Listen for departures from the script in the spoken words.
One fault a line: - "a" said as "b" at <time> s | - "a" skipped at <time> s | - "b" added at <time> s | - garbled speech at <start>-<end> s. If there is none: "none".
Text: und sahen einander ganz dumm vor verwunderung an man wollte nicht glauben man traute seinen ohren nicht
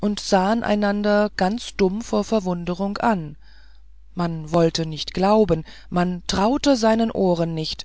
none